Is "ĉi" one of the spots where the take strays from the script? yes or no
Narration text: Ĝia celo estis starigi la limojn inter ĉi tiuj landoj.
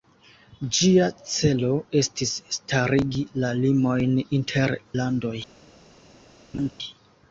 yes